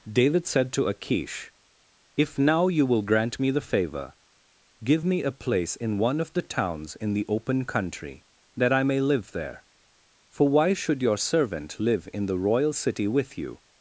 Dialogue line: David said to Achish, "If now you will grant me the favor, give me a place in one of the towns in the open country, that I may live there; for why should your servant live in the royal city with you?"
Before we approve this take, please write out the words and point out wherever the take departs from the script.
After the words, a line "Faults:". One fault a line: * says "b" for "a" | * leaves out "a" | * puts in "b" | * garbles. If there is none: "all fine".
David said to Achish, "If now you will grant me the favor, give me a place in one of the towns in the open country, that I may live there; for why should your servant live in the royal city with you?"
Faults:
all fine